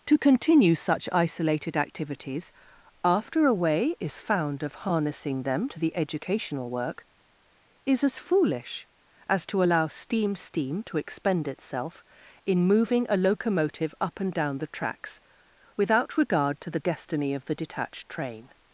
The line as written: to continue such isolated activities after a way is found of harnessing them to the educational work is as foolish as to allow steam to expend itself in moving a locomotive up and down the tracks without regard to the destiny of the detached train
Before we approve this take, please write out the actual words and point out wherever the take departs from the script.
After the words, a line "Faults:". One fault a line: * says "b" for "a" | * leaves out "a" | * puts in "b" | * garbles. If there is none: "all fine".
to continue such isolated activities after a way is found of harnessing them to the educational work is as foolish as to allow steam steam to expend itself in moving a locomotive up and down the tracks without regard to the destiny of the detached train
Faults:
* puts in "steam"